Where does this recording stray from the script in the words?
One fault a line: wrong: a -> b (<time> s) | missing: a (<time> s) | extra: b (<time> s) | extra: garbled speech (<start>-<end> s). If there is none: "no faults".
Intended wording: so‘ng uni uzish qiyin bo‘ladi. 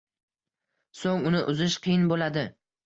no faults